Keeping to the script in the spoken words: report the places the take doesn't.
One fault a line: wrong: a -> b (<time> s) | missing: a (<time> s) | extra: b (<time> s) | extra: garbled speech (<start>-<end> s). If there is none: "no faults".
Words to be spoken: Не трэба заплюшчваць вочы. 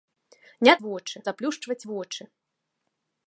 wrong: трэба -> вочы (0.9 s)